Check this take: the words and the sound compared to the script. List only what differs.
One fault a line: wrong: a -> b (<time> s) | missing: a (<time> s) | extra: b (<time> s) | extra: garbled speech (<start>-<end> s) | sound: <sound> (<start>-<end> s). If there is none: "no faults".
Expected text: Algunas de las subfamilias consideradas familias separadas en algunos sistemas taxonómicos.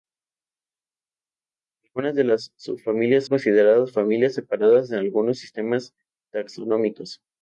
no faults